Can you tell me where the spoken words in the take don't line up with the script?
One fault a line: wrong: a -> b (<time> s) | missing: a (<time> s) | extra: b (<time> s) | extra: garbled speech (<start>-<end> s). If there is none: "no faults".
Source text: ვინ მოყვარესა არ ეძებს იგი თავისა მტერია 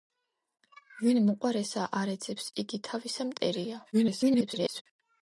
extra: garbled speech (3.9-4.8 s)